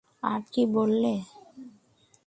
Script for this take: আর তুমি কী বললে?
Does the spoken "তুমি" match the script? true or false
false